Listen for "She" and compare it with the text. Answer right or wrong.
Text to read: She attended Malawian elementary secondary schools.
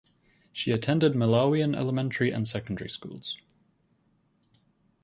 right